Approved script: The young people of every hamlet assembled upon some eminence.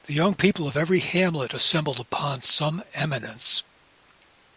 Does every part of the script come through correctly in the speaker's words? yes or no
yes